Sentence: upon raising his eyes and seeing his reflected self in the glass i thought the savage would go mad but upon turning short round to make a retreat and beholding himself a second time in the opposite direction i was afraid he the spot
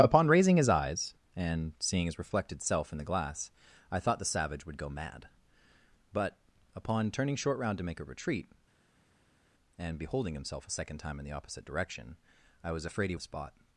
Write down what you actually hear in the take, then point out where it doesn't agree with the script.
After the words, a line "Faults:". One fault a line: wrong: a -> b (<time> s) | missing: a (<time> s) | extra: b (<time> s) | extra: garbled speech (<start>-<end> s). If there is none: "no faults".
upon raising his eyes and seeing his reflected self in the glass i thought the savage would go mad but upon turning short round to make a retreat and beholding himself a second time in the opposite direction i was afraid he the spot
Faults:
no faults